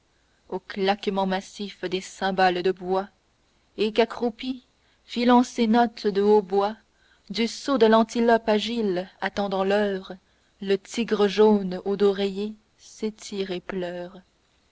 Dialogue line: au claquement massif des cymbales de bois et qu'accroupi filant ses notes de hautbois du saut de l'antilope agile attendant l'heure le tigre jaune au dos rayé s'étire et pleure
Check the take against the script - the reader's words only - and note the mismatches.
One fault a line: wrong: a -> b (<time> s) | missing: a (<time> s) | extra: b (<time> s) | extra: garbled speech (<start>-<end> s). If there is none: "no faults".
no faults